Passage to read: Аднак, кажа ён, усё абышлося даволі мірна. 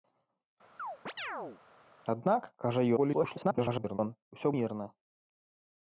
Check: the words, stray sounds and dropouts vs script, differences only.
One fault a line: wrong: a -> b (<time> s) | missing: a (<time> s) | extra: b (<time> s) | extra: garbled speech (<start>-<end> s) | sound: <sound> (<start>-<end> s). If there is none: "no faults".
sound: chirp (0.8-1.6 s)
extra: garbled speech (3.0-4.0 s)
missing: абышлося даволі (4.5 s)